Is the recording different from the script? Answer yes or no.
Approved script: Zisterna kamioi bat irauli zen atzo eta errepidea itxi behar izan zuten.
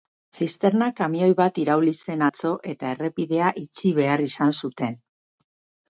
no